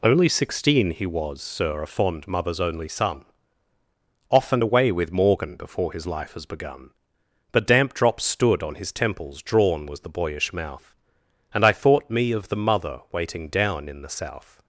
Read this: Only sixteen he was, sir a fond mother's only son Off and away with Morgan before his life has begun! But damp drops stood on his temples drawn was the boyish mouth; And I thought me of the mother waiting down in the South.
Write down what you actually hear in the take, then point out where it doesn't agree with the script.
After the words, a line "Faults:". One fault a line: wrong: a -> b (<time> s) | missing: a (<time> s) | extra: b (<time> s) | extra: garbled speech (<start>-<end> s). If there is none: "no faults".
Only sixteen he was, sir a fond mother's only son Off and away with Morgan before his life has begun! But damp drops stood on his temples drawn was the boyish mouth; And I thought me of the mother waiting down in the South.
Faults:
no faults